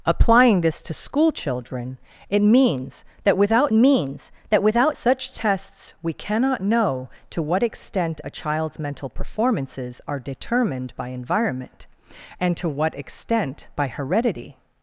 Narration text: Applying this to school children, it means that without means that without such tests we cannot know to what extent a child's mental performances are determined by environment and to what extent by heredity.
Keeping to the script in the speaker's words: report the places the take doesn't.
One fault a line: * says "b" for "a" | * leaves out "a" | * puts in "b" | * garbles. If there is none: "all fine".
all fine